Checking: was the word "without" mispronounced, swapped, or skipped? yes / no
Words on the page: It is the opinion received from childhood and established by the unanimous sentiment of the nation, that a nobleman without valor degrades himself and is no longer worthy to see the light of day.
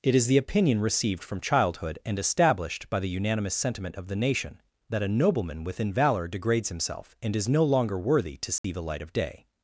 yes